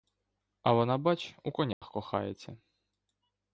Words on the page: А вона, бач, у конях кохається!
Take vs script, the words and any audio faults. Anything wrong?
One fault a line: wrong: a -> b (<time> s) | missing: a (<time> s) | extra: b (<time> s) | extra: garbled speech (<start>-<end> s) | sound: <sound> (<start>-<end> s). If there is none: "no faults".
sound: dropout (1.7-1.8 s)